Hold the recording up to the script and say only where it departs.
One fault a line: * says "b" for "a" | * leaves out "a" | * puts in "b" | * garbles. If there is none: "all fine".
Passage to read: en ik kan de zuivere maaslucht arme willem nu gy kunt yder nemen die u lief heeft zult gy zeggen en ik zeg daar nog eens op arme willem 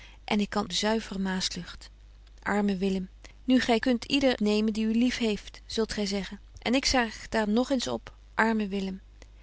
all fine